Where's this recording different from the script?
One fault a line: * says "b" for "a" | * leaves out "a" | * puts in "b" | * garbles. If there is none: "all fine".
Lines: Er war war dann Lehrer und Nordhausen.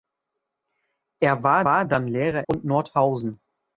all fine